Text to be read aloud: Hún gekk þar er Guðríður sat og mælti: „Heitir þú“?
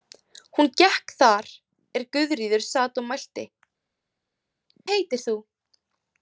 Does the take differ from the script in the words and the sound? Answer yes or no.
no